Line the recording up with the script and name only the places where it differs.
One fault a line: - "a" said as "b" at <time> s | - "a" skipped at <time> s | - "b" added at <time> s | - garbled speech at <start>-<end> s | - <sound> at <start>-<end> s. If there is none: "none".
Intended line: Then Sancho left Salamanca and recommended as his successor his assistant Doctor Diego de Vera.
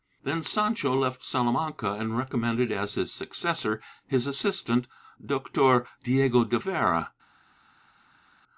none